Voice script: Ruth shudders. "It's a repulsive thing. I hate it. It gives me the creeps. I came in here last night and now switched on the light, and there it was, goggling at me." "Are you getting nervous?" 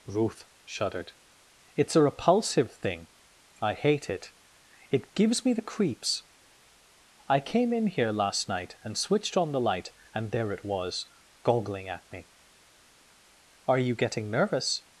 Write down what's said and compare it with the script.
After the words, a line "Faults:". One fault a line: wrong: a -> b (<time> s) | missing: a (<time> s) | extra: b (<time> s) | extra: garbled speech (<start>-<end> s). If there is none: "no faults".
Ruth shuddered. "It's a repulsive thing. I hate it. It gives me the creeps. I came in here last night and switched on the light, and there it was, goggling at me." "Are you getting nervous?"
Faults:
wrong: shudders -> shuddered (0.6 s)
missing: now (9.0 s)